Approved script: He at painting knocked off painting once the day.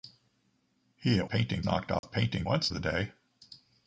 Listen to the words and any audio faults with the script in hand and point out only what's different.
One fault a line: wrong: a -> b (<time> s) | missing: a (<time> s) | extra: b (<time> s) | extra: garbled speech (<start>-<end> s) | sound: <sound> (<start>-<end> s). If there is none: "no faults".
sound: dropout (2.0-2.0 s)